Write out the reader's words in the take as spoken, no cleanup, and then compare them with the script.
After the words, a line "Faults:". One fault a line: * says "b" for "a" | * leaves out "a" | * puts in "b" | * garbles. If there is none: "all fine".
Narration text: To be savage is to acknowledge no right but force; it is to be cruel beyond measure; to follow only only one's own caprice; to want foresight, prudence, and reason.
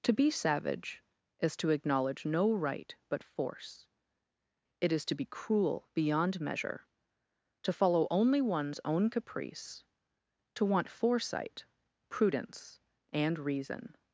To be savage is to acknowledge no right but force; it is to be cruel beyond measure; to follow only one's own caprice; to want foresight, prudence, and reason.
Faults:
* leaves out "only"